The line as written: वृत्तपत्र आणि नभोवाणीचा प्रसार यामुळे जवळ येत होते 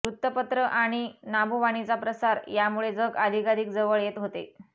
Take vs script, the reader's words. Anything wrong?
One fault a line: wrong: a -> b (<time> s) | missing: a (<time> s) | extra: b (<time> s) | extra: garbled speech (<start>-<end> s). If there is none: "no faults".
extra: जग अधिकाधिक (2.9 s)